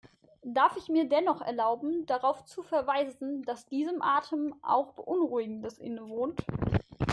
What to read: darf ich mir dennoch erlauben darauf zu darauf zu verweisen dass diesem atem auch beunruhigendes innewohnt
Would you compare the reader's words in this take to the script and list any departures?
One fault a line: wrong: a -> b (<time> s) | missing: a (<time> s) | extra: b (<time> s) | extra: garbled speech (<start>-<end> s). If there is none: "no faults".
missing: darauf zu (2.6 s)